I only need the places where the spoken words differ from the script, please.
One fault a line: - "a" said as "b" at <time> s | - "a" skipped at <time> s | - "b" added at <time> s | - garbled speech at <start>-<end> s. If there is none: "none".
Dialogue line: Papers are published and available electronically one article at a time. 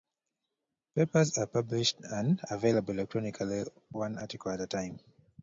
none